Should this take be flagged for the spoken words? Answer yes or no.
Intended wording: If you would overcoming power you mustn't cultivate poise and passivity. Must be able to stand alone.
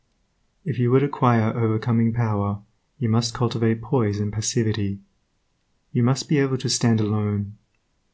yes